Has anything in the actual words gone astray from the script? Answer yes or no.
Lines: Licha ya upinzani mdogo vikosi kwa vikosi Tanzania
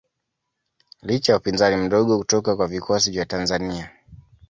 yes